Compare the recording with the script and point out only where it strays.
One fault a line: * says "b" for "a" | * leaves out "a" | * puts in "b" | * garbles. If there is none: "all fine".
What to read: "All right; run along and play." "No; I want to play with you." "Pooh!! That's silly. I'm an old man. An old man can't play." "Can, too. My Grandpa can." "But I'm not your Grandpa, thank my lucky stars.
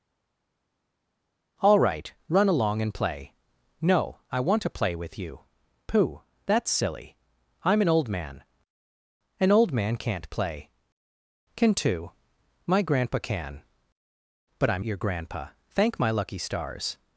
* leaves out "not"